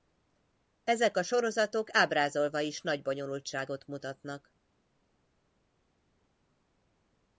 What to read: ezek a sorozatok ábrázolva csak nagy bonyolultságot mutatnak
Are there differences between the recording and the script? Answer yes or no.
yes